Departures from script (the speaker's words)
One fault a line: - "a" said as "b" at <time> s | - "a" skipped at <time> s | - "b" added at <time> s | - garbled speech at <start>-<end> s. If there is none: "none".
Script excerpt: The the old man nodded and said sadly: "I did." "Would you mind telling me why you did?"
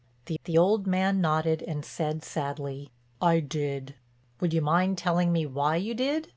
none